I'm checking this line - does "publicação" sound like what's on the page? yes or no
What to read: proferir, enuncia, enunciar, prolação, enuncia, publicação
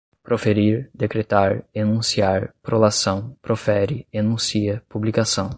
yes